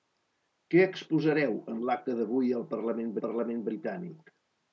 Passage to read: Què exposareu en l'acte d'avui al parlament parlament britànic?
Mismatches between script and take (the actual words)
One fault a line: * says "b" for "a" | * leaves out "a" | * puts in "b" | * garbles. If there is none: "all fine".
all fine